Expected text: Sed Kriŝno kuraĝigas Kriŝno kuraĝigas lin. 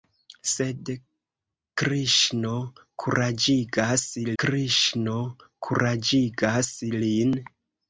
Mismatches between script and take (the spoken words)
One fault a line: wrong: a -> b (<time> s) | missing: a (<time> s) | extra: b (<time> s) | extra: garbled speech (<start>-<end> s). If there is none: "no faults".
no faults